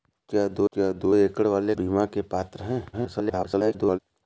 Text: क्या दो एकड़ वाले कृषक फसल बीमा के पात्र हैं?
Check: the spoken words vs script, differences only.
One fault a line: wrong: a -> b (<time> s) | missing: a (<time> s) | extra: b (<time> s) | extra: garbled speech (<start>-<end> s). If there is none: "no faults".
extra: क्या दो (0.7 s)
missing: कृषक फसल (1.7 s)
extra: garbled speech (2.9-4.0 s)